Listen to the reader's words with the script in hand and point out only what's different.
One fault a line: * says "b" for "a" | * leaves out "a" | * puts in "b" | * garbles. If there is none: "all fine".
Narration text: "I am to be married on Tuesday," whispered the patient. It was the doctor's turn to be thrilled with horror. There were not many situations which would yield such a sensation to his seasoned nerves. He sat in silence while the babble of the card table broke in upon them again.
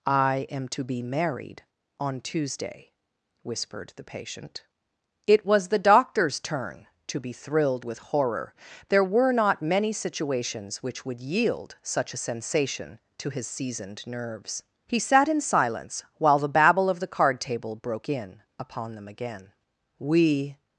* puts in "We"